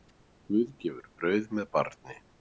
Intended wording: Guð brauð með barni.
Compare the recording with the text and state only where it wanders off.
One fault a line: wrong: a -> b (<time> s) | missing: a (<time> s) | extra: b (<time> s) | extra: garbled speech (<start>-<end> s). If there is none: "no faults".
extra: gefur (0.8 s)